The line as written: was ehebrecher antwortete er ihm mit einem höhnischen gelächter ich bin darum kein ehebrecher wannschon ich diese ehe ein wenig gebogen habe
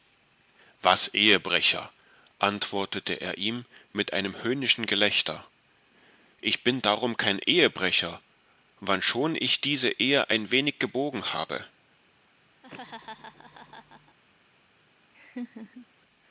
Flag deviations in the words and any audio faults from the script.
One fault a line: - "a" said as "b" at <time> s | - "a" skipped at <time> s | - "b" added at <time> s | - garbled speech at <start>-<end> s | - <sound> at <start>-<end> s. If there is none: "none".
- laugh at 12.6-14.2 s
- laugh at 15.1-15.9 s